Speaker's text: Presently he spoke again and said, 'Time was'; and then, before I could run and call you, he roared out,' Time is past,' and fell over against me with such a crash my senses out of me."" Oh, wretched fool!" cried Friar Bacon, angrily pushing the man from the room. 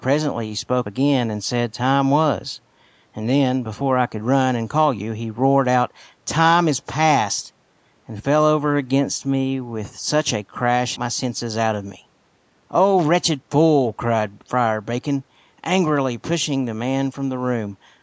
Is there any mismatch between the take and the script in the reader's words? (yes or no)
no